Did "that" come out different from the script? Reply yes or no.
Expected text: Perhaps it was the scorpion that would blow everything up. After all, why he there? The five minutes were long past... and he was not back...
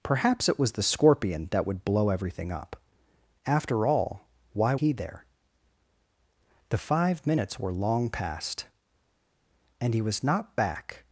no